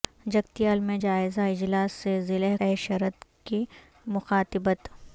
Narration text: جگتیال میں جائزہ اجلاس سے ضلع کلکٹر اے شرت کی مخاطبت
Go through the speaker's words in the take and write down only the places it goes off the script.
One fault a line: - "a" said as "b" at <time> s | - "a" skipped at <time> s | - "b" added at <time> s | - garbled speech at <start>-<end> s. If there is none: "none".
- "کلکٹر" skipped at 2.5 s